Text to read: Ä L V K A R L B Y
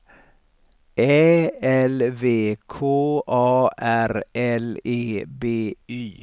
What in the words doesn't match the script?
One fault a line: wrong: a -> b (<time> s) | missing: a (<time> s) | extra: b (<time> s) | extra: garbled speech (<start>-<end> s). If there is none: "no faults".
extra: E (4.8 s)